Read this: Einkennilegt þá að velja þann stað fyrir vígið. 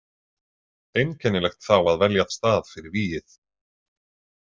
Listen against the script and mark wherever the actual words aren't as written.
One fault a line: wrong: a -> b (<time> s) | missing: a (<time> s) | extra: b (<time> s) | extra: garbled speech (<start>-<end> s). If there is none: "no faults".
missing: þann (2.3 s)